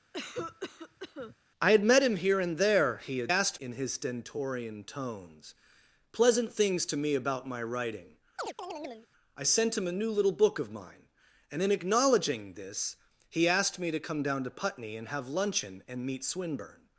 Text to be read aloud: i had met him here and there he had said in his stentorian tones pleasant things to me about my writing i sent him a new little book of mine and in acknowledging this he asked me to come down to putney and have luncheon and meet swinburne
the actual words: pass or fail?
fail